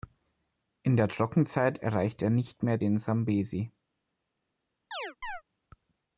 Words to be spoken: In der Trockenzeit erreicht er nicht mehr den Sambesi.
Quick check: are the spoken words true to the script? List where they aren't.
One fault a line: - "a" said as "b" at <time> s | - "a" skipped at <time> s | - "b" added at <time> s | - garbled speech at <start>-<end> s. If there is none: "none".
none